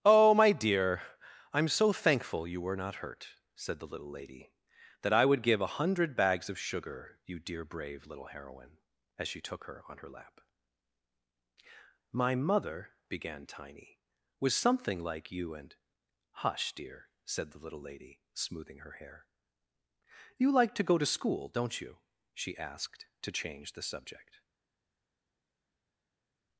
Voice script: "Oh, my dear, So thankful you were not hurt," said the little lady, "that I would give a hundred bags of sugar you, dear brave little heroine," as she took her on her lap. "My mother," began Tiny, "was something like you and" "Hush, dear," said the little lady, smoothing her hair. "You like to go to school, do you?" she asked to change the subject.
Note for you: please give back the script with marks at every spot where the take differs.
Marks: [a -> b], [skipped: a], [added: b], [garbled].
"Oh, my dear, [added: I'm] So thankful you were not hurt," said the little lady, "that I would give a hundred bags of sugar you, dear brave little heroine," as she took her on her lap. "My mother," began Tiny, "was something like you and" "Hush, dear," said the little lady, smoothing her hair. "You like to go to school, [do -> don't] you?" she asked to change the subject.